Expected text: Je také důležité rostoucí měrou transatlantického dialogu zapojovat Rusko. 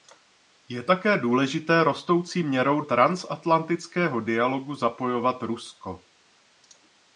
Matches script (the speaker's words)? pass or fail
pass